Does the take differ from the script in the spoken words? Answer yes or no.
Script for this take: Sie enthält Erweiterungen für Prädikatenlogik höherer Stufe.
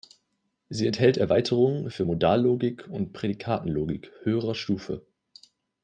yes